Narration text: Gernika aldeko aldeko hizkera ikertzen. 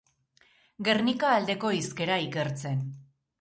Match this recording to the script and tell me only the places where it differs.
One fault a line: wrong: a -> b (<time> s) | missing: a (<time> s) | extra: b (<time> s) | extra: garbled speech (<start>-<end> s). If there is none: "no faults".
missing: aldeko (1.7 s)